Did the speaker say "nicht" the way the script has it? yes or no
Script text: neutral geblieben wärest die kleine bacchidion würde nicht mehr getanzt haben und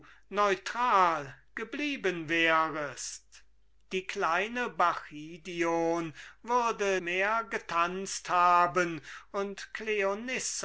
no